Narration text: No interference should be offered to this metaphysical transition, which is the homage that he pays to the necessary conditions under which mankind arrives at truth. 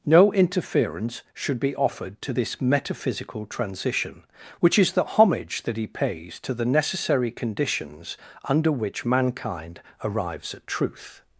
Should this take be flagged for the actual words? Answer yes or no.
no